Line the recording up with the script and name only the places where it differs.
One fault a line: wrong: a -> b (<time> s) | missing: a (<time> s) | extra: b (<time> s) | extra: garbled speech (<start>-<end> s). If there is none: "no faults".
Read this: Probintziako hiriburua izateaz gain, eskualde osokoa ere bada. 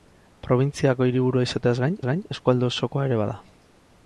extra: gain (2.1 s)